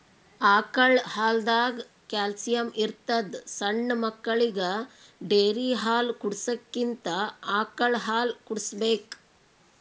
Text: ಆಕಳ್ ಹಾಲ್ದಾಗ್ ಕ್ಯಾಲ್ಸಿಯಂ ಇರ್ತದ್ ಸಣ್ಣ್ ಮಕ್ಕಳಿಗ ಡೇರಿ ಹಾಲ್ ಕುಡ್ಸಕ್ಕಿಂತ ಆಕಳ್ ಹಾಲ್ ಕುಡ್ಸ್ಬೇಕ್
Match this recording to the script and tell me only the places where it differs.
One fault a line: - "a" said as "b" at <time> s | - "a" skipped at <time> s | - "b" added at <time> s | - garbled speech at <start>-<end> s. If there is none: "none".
none